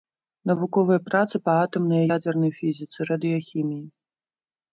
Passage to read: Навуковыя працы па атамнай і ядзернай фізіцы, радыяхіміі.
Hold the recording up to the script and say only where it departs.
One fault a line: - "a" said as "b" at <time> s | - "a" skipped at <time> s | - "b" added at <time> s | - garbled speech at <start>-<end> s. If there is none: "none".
none